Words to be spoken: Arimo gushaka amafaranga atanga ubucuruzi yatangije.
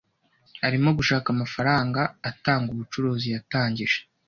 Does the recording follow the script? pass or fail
pass